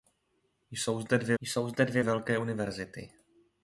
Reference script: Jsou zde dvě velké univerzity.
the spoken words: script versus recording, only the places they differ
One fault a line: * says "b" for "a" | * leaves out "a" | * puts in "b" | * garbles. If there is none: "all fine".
* puts in "jsou zde dvě"